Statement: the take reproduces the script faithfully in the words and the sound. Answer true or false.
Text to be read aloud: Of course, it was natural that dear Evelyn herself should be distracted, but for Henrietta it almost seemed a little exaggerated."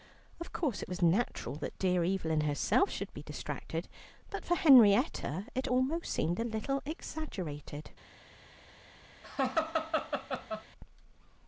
false